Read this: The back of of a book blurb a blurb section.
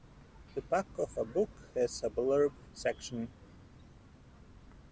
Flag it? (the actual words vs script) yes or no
yes